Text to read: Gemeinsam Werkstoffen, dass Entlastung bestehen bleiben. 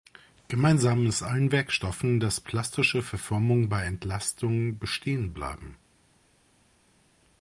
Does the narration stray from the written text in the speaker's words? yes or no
yes